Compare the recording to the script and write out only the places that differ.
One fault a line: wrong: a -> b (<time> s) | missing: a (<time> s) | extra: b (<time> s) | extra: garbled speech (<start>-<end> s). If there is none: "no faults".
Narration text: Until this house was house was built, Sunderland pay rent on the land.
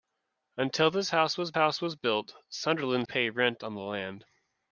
no faults